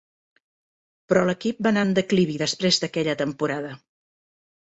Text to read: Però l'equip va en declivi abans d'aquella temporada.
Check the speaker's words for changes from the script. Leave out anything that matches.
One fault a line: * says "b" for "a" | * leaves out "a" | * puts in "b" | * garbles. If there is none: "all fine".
* puts in "anar"
* says "després" for "abans"